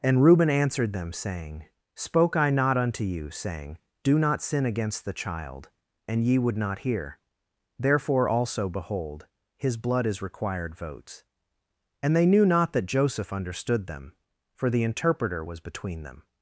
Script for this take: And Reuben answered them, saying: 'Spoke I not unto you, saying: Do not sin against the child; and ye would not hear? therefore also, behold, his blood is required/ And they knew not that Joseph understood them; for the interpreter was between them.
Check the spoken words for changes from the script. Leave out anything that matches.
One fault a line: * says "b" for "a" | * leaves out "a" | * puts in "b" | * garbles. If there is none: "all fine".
* puts in "votes"